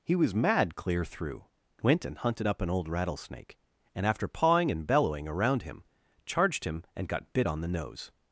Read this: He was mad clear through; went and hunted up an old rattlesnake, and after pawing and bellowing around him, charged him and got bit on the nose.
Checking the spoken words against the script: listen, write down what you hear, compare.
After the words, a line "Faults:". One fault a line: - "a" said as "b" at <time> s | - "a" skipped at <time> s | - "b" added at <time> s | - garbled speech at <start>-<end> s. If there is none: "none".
He was mad clear through; went and hunted up an old rattlesnake, and after pawing and bellowing around him, charged him and got bit on the nose.
Faults:
none